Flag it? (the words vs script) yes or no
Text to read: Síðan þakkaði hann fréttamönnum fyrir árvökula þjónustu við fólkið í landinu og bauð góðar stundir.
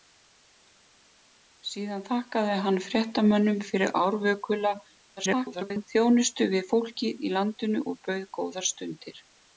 yes